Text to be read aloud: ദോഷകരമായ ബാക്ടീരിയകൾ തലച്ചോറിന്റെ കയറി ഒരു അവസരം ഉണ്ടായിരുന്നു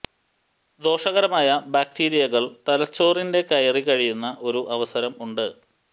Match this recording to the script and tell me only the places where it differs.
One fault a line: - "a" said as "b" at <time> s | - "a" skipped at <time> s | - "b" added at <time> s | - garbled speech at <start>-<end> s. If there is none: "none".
- "കഴിയുന്ന" added at 3.8 s
- "ഉണ്ടായിരുന്നു" said as "ഉണ്ട്" at 5.3 s